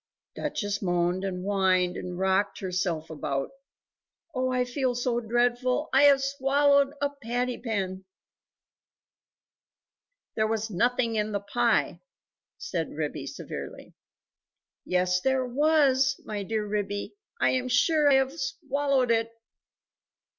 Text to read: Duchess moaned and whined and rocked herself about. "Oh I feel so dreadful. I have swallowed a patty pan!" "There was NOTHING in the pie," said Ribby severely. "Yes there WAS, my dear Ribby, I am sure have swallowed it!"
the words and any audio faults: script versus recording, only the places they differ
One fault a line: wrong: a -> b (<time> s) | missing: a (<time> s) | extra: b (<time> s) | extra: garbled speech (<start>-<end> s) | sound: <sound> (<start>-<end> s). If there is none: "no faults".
no faults